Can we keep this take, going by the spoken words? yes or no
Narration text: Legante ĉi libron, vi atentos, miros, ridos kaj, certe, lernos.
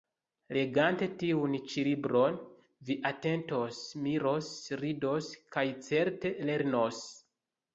no